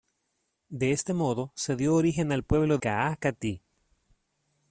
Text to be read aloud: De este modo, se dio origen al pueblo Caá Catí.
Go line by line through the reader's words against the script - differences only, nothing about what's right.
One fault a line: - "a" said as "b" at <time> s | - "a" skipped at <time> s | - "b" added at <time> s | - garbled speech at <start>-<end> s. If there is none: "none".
none